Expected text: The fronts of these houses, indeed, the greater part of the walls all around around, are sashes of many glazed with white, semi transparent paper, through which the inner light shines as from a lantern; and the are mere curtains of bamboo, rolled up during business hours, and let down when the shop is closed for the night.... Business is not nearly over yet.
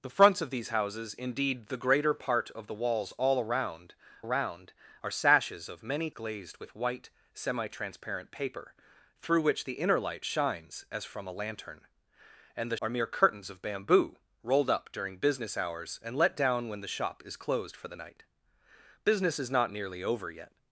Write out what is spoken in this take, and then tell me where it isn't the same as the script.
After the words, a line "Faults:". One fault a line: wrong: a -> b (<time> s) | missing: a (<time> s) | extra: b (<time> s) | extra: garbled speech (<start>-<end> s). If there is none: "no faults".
The fronts of these houses, indeed, the greater part of the walls all around around, are sashes of many glazed with white, semi transparent paper, through which the inner light shines as from a lantern; and the are mere curtains of bamboo, rolled up during business hours, and let down when the shop is closed for the night.... Business is not nearly over yet.
Faults:
no faults